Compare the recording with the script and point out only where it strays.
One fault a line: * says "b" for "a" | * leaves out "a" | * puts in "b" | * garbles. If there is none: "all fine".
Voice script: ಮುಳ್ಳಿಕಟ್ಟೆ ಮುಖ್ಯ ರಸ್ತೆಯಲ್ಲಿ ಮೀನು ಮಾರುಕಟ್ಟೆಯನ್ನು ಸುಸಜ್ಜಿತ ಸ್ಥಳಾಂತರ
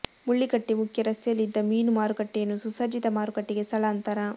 * puts in "ಇದ್ದ"
* puts in "ಮಾರುಕಟ್ಟೆಗೆ"